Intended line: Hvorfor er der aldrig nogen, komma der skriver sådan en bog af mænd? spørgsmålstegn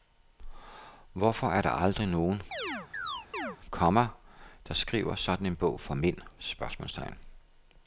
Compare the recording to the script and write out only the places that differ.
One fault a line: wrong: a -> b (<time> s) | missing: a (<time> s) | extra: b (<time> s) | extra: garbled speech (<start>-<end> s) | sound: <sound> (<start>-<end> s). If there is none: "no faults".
sound: chirp (2.5-3.6 s)
wrong: af -> for (5.8 s)